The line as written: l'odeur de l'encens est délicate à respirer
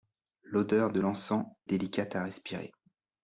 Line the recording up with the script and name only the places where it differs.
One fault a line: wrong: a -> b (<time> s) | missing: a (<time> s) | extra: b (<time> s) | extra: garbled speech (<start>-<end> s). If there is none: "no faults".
missing: est (1.4 s)